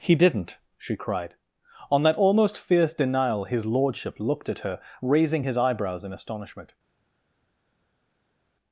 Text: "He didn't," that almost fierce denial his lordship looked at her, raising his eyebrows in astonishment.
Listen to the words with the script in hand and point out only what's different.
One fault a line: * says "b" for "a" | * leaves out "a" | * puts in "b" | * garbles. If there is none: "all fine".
* puts in "she cried On"